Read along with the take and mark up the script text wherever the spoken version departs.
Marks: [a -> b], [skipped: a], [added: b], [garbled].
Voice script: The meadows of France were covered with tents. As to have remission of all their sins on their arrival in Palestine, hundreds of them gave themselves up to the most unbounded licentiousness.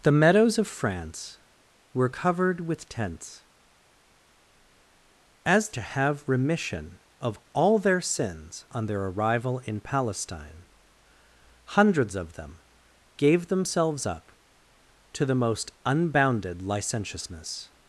The meadows of France were covered with tents. As to have remission of all their sins on their arrival in Palestine, hundreds of them gave themselves up to the most unbounded licentiousness.